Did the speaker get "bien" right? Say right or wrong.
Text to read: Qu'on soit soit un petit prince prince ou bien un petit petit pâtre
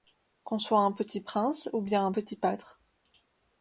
right